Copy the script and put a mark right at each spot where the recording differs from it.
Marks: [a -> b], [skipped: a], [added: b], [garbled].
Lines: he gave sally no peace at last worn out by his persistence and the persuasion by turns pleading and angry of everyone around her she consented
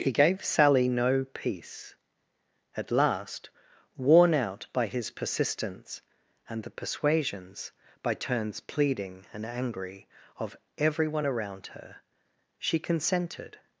he gave sally no peace at last worn out by his persistence and the [persuasion -> persuasions] by turns pleading and angry of everyone around her she consented